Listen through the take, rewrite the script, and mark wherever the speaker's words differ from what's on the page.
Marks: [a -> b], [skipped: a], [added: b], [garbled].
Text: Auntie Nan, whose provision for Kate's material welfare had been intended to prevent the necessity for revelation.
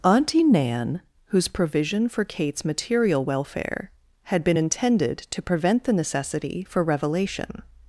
Auntie Nan, whose provision for Kate's material welfare had been intended to prevent the necessity for revelation.